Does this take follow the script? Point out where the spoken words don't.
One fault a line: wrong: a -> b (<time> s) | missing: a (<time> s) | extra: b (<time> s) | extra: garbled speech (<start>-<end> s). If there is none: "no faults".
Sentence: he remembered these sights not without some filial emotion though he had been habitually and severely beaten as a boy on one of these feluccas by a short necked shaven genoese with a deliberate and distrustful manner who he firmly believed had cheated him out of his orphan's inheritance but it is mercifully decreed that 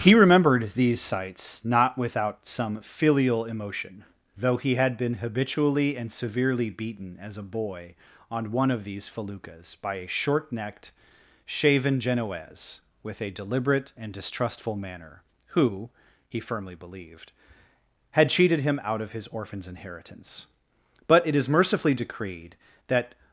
no faults